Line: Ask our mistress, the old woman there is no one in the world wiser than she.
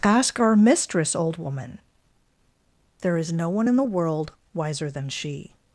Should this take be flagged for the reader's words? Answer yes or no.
yes